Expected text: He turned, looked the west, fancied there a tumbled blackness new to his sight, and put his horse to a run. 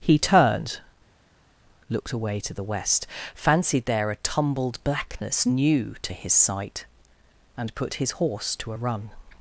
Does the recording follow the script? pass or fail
fail